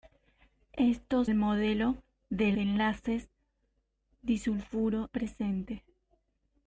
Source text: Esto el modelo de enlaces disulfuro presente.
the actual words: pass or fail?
pass